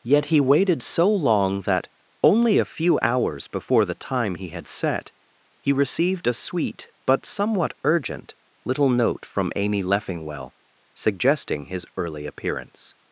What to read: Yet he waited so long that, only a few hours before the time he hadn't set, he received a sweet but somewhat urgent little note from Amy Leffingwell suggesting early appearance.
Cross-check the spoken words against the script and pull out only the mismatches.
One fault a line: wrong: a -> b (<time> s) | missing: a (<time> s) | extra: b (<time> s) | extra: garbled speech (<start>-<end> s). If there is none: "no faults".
wrong: hadn't -> had (4.5 s)
extra: his (11.7 s)